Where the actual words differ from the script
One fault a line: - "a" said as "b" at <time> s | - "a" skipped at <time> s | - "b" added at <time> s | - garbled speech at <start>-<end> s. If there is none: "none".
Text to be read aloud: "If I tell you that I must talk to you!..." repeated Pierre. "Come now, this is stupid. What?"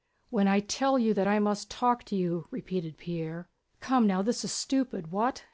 - "If" said as "When" at 0.3 s